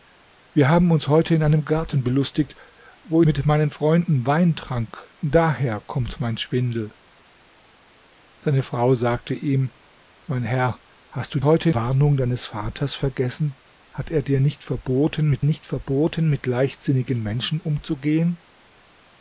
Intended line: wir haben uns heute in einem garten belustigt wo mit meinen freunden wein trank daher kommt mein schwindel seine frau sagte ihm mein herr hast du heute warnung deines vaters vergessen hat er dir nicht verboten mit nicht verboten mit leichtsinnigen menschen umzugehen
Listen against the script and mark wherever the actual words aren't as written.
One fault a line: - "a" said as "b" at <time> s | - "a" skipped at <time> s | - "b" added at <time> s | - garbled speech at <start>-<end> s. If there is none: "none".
none